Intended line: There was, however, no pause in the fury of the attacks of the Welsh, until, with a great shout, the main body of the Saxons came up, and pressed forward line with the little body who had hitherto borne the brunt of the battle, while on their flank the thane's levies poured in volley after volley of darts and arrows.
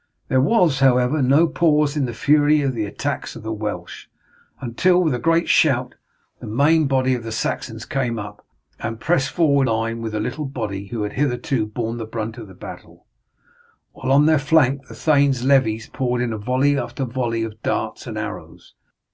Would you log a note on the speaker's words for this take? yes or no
no